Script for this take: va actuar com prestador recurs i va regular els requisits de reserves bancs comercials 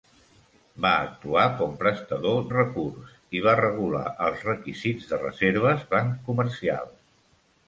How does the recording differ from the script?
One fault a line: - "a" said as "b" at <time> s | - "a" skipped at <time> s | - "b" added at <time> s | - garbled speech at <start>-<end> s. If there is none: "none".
none